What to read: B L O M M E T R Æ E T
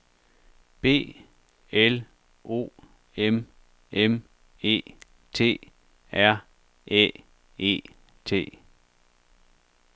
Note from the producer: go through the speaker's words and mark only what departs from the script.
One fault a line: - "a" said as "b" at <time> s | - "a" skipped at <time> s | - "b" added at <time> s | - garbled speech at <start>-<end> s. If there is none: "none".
none